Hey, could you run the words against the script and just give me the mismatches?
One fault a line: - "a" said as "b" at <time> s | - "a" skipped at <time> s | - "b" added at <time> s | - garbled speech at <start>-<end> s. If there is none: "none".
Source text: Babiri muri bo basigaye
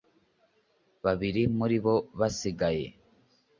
none